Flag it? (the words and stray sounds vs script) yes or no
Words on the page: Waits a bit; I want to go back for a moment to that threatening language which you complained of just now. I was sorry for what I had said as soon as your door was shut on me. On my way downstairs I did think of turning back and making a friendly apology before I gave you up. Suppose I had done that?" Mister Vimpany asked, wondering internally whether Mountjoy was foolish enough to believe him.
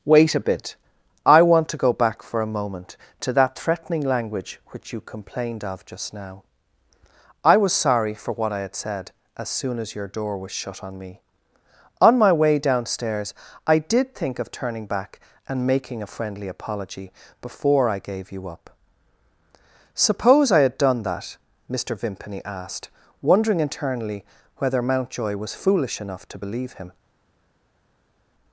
yes